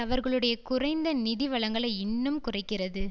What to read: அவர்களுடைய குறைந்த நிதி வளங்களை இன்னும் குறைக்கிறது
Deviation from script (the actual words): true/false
false